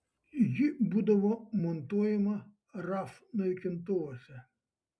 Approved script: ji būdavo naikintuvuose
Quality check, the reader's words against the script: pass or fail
fail